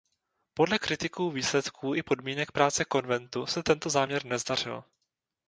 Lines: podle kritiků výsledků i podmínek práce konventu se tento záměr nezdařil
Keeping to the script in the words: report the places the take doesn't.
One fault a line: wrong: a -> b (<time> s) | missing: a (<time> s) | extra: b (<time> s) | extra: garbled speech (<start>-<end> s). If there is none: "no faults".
no faults